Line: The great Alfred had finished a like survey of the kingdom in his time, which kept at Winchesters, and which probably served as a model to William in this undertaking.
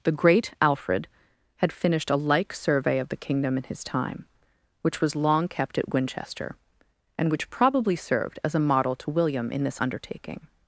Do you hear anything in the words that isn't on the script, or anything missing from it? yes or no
yes